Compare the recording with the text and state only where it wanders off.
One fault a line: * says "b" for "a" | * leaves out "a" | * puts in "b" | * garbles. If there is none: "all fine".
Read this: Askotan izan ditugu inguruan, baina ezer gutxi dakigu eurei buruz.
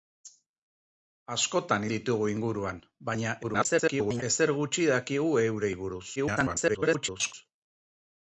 * leaves out "izan"
* garbles
* garbles